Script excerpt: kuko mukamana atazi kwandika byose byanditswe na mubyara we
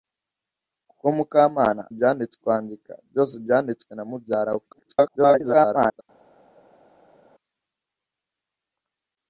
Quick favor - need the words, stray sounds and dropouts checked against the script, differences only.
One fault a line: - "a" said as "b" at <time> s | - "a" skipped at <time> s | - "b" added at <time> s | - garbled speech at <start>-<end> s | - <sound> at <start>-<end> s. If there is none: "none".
- "atazi" said as "byanditswe" at 2.0 s
- garbled speech at 4.7-6.0 s